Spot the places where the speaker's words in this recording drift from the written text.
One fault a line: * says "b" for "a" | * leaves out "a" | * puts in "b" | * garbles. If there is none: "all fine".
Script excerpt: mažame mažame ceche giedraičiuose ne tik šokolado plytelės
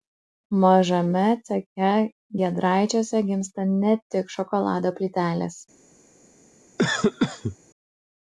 * leaves out "mažame"
* puts in "gimsta"